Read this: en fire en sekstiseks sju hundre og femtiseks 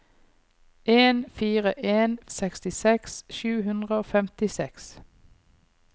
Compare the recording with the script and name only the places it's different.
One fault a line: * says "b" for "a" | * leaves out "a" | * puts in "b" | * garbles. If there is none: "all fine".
all fine